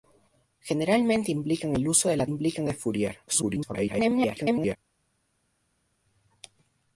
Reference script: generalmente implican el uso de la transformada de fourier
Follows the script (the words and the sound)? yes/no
no